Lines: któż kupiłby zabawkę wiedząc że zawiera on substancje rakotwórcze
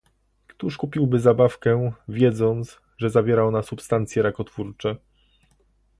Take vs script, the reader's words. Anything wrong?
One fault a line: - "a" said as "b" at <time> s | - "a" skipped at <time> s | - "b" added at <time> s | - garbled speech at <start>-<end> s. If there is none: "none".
- "on" said as "ona" at 3.4 s